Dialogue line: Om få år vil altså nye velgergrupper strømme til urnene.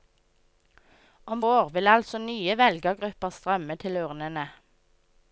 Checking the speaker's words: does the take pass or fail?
fail